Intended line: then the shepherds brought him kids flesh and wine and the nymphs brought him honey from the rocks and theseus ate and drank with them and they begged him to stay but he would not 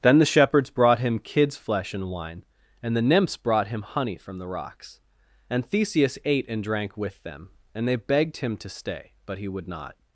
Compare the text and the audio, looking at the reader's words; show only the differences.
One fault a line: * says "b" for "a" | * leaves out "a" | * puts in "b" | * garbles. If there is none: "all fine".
all fine